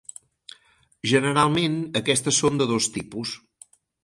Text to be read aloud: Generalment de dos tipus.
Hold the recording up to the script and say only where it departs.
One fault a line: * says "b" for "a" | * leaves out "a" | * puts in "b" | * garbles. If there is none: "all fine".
* puts in "aquestes són"